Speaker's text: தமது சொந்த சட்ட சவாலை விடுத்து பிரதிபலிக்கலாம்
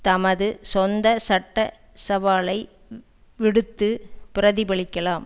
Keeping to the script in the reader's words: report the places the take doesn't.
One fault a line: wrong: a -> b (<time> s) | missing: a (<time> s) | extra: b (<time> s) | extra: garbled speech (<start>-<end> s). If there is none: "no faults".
no faults